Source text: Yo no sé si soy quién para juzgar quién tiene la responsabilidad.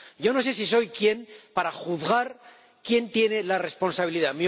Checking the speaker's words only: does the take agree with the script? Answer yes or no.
yes